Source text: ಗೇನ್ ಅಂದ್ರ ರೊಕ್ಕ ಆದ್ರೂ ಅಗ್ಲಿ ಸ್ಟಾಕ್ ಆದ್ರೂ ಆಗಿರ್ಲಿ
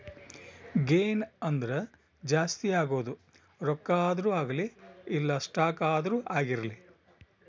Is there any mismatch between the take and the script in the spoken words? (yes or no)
yes